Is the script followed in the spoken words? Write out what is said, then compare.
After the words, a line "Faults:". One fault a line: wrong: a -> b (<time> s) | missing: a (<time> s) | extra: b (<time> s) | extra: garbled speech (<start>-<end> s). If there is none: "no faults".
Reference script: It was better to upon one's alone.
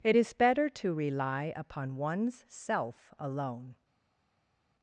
It is better to rely upon one's self alone.
Faults:
wrong: was -> is (0.1 s)
extra: rely (0.9 s)
extra: self (2.5 s)